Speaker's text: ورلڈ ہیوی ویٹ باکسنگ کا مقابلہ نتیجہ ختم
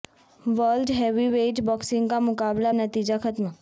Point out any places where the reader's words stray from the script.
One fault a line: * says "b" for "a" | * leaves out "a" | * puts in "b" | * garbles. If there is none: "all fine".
all fine